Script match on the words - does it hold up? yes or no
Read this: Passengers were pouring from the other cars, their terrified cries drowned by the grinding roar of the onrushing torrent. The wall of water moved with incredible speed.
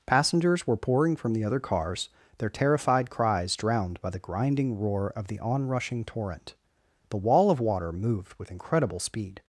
yes